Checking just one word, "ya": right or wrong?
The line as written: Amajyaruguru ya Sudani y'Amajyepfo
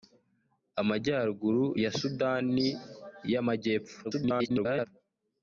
right